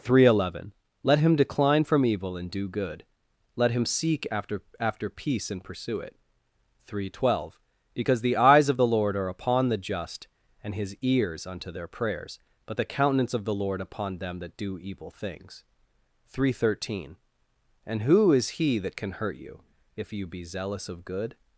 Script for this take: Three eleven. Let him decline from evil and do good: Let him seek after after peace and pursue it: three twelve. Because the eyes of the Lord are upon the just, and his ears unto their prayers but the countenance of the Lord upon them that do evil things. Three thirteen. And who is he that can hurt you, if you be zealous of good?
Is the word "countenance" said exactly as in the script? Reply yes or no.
yes